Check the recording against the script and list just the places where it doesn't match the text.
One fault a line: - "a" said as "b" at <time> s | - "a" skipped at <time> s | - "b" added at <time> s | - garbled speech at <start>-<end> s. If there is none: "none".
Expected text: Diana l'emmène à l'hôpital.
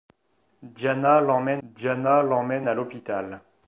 - "diana l'emmène" added at 1.6 s